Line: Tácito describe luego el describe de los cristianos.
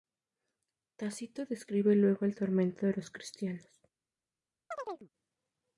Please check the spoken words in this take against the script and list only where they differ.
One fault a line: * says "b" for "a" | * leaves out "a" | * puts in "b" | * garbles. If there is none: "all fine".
* says "tormento" for "describe"